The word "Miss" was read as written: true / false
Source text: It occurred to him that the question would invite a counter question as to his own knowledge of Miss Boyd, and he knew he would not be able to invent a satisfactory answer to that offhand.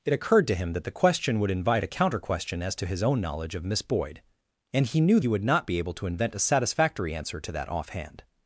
true